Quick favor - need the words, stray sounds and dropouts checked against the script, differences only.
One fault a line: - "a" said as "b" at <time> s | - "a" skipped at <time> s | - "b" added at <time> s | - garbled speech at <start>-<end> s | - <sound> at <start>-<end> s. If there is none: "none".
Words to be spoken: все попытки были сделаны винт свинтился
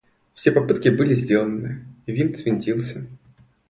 none